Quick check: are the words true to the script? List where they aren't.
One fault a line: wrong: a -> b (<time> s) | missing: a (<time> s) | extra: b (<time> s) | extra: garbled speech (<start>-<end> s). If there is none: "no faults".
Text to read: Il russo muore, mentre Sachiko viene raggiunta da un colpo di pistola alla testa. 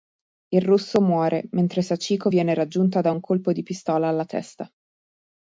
no faults